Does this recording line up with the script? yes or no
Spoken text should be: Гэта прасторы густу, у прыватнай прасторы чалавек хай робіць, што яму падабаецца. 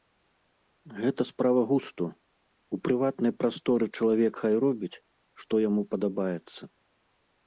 no